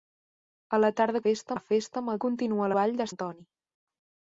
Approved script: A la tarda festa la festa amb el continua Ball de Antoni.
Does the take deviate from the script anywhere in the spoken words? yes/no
no